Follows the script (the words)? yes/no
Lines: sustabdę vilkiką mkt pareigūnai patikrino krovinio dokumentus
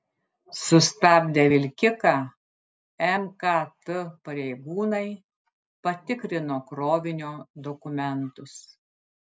yes